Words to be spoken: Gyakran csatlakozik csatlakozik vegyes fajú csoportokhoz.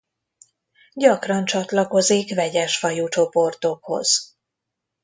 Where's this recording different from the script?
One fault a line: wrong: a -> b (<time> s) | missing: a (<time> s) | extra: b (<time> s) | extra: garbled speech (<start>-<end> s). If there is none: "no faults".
missing: csatlakozik (2.4 s)